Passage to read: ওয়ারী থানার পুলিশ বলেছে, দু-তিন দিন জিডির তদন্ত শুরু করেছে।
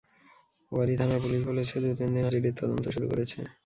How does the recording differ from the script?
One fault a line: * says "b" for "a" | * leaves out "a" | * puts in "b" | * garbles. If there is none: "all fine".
all fine